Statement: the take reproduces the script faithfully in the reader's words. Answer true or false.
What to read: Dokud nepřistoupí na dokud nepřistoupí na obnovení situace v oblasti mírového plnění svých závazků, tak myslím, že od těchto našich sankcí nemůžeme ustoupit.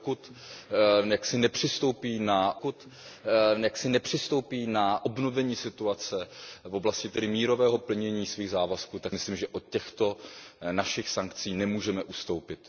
true